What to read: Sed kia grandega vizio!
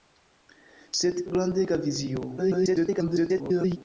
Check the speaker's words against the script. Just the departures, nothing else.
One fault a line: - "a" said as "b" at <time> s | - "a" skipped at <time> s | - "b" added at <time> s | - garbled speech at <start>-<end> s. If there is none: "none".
- "kia" skipped at 1.2 s
- garbled speech at 2.4-3.8 s